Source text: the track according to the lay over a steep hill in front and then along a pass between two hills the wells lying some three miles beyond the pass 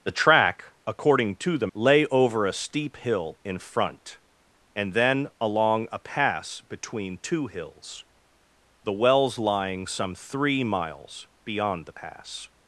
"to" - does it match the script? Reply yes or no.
yes